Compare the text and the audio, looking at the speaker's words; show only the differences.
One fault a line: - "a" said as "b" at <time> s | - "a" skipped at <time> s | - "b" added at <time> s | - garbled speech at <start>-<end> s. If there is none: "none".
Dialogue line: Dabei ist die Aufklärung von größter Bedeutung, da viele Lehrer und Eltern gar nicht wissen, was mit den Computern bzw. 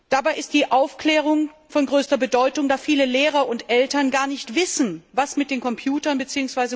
none